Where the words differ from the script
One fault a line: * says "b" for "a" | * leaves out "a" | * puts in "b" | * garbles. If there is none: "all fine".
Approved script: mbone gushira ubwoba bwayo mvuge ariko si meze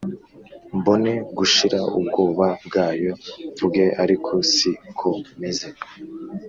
* puts in "ko"